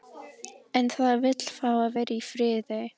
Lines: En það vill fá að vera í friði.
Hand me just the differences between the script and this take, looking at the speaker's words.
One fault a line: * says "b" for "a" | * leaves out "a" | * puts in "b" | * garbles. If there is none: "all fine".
all fine